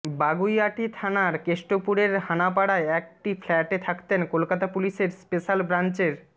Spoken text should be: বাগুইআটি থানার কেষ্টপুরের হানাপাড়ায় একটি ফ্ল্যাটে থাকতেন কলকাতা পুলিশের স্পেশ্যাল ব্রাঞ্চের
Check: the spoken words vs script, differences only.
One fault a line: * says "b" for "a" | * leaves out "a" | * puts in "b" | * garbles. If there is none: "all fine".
all fine